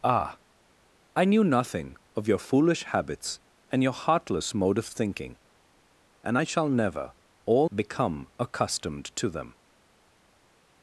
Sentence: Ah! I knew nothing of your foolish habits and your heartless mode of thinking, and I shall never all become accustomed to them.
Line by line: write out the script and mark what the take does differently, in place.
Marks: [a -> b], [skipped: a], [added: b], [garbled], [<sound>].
Ah! I knew nothing of your foolish habits and your heartless mode of thinking, and I shall never all become accustomed to them.